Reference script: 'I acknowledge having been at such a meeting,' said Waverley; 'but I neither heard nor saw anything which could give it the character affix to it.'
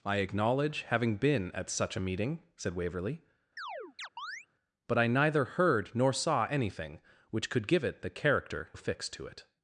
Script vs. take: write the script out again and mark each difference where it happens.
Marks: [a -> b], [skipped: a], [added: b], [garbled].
'I acknowledge having been at such a meeting,' said Waverley; 'but I neither heard nor saw anything which could give it the character affix to it.'